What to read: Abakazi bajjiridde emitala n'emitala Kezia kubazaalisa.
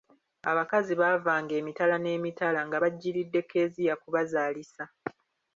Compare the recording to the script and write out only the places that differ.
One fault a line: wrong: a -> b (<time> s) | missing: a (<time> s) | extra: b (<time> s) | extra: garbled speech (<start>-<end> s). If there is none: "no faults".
wrong: bajjiridde -> baavanga (1.0 s)
extra: nga bajjiridde (2.7 s)